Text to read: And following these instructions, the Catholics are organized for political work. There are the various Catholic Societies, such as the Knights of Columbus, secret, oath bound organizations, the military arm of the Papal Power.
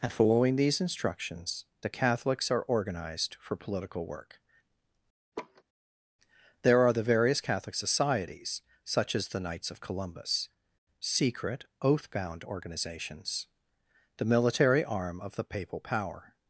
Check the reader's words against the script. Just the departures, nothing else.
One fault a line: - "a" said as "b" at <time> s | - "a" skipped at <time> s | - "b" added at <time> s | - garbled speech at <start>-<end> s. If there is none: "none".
none